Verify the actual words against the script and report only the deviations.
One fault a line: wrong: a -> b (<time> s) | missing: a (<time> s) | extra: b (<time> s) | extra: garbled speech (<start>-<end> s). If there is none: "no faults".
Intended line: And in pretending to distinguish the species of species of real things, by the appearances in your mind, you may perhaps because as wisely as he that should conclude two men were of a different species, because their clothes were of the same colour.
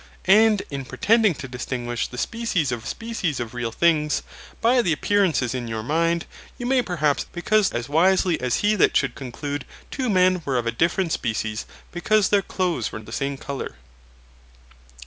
no faults